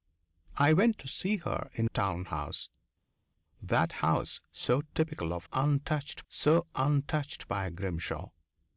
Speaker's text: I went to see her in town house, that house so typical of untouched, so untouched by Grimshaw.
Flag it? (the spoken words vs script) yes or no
no